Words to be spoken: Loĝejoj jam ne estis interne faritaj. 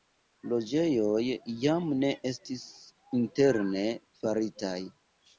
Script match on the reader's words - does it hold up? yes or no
yes